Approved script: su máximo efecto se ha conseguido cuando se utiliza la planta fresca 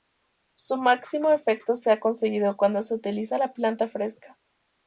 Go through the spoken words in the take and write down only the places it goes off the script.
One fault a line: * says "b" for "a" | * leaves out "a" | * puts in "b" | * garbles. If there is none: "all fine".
all fine